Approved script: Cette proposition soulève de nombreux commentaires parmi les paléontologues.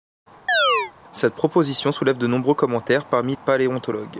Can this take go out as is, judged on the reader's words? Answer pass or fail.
fail